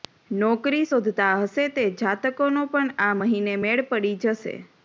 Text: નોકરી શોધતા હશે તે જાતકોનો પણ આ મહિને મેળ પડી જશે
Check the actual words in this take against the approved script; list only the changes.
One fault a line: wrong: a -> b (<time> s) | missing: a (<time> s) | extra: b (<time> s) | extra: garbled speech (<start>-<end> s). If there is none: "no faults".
no faults